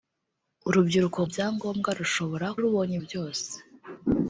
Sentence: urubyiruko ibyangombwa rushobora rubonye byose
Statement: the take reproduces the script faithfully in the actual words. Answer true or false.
true